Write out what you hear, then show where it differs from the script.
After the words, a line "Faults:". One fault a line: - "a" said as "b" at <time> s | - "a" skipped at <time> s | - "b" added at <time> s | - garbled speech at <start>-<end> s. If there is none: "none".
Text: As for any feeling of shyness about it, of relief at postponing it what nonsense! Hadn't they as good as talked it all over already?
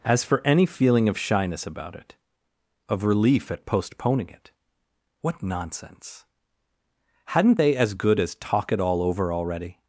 As for any feeling of shyness about it, of relief at postponing it what nonsense! Hadn't they as good as talk it all over already?
Faults:
- "talked" said as "talk" at 8.3 s